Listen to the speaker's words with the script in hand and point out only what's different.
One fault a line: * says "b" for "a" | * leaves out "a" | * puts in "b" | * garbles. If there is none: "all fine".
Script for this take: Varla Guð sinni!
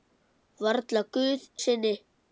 all fine